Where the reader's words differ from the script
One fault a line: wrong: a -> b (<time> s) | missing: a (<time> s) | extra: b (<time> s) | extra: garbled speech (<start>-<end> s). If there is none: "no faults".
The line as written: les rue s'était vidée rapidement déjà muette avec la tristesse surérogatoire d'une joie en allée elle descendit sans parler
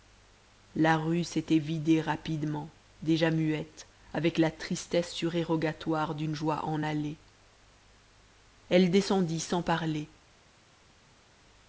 wrong: les -> la (0.8 s)